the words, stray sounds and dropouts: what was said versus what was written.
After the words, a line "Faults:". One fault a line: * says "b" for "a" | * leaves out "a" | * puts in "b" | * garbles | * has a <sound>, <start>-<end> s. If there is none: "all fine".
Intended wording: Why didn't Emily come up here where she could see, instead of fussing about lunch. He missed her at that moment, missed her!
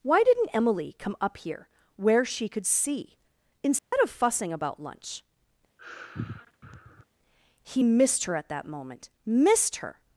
Why didn't Emily come up here where she could see, instead of fussing about lunch. He missed her at that moment, missed her!
Faults:
* has a dropout, 3.8-3.9 s
* has a sigh, 5.8-7.0 s